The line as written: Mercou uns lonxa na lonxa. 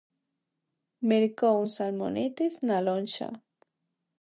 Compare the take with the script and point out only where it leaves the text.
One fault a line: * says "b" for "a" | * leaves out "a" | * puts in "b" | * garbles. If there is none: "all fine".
* says "salmonetes" for "lonxa"